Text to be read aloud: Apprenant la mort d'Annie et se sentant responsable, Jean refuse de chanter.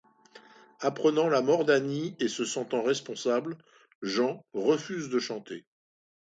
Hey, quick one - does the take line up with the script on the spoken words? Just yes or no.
yes